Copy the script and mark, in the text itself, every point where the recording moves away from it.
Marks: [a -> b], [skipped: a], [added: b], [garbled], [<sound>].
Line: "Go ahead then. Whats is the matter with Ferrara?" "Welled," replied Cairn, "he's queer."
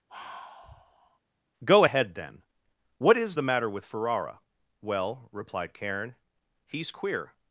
[sigh] "Go ahead then. [Whats -> What] is the matter with Ferrara?" ["Welled," -> Well] replied Cairn, "he's queer."